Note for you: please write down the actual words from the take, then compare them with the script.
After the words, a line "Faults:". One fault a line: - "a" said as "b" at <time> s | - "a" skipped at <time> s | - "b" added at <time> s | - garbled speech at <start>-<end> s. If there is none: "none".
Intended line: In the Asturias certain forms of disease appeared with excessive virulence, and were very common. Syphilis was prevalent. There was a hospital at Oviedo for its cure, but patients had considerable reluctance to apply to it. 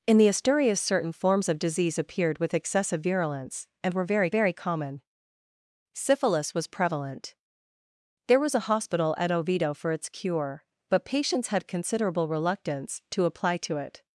In the Asturias certain forms of disease appeared with excessive virulence, and were very very common. Syphilis was prevalent. There was a hospital at Oviedo for its cure, but patients had considerable reluctance to apply to it.
Faults:
- "very" added at 4.3 s